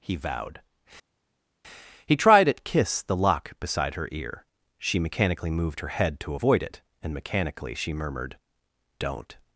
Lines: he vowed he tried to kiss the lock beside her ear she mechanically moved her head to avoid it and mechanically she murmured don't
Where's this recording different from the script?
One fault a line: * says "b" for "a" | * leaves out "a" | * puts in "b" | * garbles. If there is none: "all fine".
* says "at" for "to"